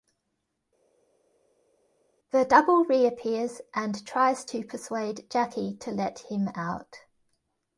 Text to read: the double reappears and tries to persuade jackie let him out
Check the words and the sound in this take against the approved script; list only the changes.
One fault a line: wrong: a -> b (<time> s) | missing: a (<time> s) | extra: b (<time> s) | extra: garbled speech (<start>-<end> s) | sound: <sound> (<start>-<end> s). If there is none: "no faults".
extra: to (5.8 s)